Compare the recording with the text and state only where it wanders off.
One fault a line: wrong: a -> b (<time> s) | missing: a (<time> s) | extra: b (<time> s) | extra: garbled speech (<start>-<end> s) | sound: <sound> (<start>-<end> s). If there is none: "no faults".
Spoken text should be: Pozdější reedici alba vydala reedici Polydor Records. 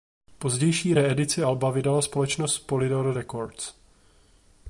wrong: reedici -> společnost (2.0 s)